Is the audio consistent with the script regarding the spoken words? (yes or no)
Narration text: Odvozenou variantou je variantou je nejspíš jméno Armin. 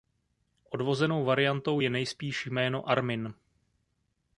no